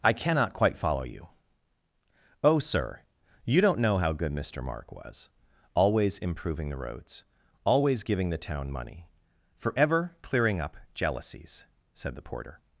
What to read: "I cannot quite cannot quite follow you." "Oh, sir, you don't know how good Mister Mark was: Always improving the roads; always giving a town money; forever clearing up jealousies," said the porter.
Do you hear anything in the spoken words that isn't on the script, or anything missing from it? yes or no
yes